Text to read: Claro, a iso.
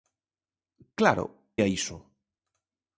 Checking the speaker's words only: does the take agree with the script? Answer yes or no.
yes